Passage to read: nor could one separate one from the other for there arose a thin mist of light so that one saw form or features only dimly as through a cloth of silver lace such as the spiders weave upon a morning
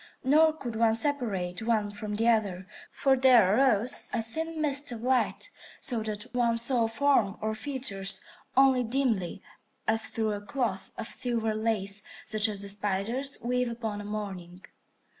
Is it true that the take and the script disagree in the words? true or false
false